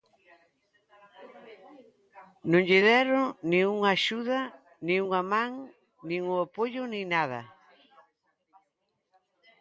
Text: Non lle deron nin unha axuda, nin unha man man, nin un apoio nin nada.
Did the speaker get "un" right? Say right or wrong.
right